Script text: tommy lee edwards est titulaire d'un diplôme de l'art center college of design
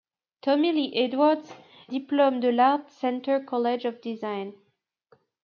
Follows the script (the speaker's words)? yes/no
no